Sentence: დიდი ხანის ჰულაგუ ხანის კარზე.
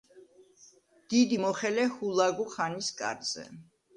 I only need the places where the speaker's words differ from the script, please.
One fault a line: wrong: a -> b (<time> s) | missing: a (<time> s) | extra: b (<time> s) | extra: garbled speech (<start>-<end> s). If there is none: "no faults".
wrong: ხანის -> მოხელე (1.4 s)